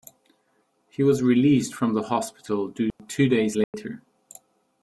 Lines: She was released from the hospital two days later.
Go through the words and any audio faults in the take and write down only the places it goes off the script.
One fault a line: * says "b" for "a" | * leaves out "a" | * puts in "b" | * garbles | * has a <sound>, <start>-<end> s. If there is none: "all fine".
* says "He" for "She"
* has a dropout, 2.9-3.0 s
* has a dropout, 3.6-3.7 s